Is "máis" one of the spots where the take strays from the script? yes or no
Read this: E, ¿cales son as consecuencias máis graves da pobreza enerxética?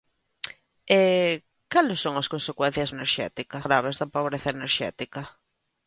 yes